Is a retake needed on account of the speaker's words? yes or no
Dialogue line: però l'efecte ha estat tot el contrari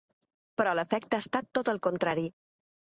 no